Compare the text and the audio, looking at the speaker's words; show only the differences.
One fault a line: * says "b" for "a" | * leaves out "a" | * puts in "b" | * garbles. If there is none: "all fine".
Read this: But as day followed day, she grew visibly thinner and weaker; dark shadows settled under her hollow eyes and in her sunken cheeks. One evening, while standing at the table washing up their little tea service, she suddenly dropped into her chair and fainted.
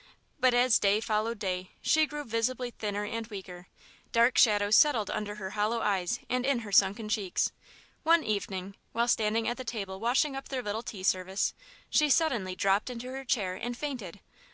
all fine